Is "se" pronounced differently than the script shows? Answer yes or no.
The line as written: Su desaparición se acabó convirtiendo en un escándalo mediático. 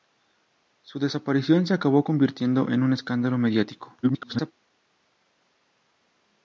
no